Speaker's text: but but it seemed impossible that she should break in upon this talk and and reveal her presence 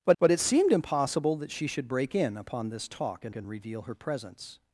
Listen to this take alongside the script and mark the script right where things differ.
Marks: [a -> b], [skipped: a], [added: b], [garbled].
but but it seemed impossible that she should break in upon this talk and and reveal her presence